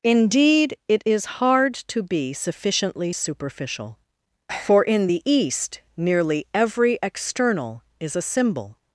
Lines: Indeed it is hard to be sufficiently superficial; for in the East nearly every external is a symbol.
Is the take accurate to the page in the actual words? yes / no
yes